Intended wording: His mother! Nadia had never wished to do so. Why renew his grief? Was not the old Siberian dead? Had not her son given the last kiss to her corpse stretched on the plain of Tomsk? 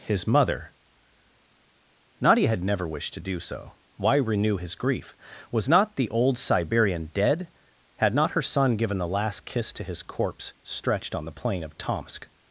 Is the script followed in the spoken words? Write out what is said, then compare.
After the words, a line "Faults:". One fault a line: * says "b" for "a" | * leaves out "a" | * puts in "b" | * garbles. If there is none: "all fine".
His mother! Nadia had never wished to do so. Why renew his grief? Was not the old Siberian dead? Had not her son given the last kiss to his corpse stretched on the plain of Tomsk?
Faults:
* says "his" for "her"